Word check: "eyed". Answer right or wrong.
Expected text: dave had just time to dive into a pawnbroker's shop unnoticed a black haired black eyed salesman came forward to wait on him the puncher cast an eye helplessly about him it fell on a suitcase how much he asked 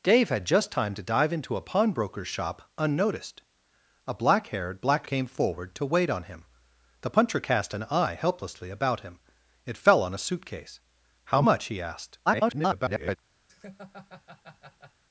wrong